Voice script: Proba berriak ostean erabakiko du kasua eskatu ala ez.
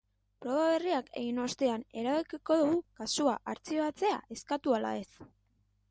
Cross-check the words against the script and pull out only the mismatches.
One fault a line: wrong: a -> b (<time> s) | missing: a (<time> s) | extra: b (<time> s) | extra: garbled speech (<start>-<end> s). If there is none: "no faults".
extra: egin (1.2 s)
extra: artxibatzea (3.5 s)